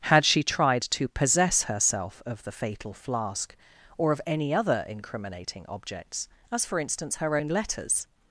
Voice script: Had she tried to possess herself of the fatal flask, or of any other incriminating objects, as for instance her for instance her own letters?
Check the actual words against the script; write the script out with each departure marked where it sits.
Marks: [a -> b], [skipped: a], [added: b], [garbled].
Had she tried to possess herself of the fatal flask, or of any other incriminating objects, as for instance her [skipped: for instance her] own letters?